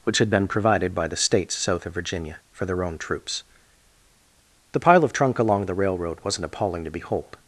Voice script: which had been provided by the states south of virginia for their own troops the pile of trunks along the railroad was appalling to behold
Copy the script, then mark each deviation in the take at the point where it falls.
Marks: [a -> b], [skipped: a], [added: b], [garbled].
which had been provided by the states south of virginia for their own troops the pile of [trunks -> trunk] along the railroad [was -> wasn't] appalling to behold